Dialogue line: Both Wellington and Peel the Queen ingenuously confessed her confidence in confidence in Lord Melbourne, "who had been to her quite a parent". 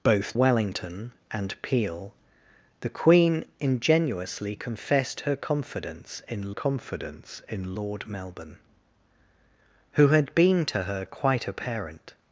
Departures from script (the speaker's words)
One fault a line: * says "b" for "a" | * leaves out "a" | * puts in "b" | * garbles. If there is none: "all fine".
all fine